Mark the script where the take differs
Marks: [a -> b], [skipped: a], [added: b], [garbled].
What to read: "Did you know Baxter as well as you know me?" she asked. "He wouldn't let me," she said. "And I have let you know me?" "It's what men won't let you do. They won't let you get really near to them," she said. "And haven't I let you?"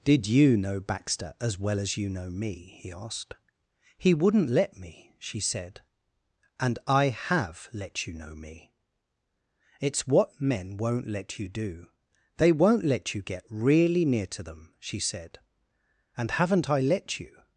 "Did you know Baxter as well as you know me?" [she -> he] asked. "He wouldn't let me," she said. "And I have let you know me?" "It's what men won't let you do. They won't let you get really near to them," she said. "And haven't I let you?"